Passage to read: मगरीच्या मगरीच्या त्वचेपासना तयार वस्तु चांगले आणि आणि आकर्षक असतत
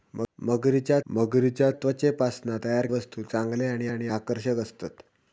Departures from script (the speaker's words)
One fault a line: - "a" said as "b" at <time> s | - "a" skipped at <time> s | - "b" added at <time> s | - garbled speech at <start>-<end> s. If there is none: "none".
none